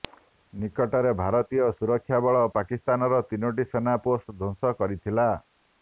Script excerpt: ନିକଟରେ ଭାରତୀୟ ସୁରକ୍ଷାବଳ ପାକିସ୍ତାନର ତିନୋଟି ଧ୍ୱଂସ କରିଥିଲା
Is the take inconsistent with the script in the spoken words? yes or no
yes